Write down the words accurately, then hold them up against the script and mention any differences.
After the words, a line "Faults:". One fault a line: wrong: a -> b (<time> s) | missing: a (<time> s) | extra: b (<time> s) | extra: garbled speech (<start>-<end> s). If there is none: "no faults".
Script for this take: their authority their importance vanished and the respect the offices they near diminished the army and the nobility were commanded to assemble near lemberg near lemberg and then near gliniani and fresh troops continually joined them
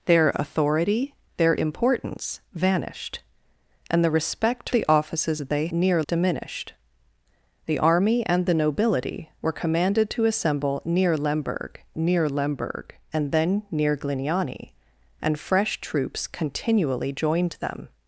their authority their importance vanished and the respect the offices they near diminished the army and the nobility were commanded to assemble near lemberg near lemberg and then near gliniani and fresh troops continually joined them
Faults:
no faults